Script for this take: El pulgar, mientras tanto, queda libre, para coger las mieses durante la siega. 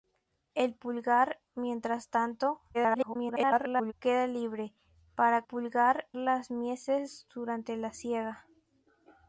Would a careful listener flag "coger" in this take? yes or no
yes